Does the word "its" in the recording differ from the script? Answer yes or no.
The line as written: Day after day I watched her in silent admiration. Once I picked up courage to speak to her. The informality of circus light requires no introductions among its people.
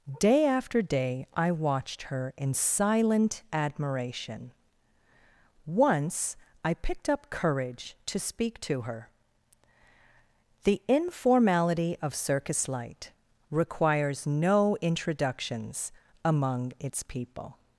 no